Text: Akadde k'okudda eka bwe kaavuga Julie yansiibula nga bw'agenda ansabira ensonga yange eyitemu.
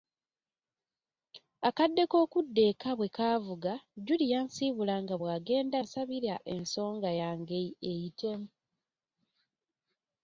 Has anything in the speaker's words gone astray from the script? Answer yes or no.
no